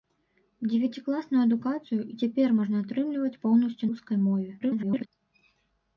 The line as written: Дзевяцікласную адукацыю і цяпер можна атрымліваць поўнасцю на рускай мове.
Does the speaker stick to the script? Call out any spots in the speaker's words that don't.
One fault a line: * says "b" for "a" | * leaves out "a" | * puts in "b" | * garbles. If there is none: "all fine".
* leaves out "на"
* garbles